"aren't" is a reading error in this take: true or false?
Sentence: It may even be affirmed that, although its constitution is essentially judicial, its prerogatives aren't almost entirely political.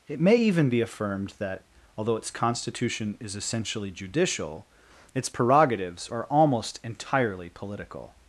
true